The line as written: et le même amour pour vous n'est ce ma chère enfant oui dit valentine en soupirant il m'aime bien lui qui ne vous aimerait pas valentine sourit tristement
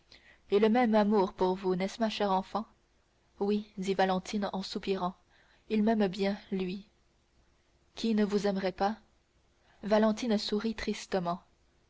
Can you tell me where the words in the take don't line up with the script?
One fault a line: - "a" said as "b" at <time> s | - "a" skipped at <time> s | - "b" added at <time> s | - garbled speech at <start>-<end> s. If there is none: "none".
none